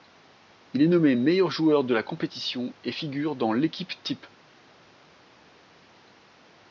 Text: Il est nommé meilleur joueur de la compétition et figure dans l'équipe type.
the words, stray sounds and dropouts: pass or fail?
pass